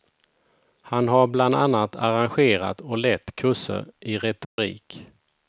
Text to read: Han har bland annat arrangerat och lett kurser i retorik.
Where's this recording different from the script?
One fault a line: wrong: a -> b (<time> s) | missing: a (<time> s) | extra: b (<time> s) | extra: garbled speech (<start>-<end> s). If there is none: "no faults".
no faults